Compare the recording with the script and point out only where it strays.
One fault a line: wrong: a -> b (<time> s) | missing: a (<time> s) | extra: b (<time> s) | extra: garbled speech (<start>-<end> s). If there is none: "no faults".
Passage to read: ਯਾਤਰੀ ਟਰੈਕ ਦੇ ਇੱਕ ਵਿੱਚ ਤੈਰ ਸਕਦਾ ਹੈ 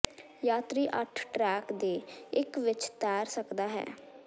extra: ਅੱਠ (1.0 s)